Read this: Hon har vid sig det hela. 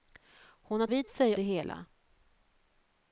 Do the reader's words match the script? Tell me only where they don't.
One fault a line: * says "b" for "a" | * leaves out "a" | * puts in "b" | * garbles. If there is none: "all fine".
all fine